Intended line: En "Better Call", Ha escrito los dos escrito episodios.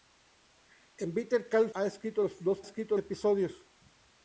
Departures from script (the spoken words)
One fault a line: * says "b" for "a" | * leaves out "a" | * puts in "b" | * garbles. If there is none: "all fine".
all fine